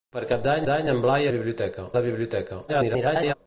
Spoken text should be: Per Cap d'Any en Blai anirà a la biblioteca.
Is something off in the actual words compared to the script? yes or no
yes